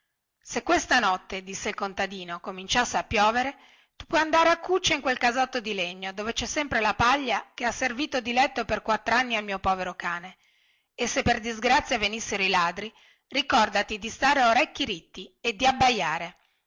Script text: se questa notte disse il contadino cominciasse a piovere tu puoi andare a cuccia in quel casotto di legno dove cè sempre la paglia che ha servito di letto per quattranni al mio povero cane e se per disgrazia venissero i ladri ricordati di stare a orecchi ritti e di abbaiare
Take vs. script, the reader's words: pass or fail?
pass